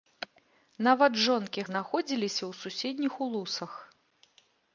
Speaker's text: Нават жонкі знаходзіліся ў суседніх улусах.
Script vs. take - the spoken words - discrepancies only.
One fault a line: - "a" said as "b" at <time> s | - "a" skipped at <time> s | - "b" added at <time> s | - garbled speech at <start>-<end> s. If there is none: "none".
none